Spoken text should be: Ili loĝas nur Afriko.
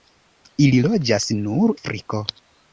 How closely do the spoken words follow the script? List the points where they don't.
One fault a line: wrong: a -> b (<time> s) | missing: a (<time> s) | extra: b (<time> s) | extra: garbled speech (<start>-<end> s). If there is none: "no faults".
no faults